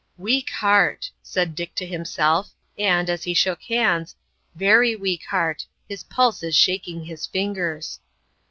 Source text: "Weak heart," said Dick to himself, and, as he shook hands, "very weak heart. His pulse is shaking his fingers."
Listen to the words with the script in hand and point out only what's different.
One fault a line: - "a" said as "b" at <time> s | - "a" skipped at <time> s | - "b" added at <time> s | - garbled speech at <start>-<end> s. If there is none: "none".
none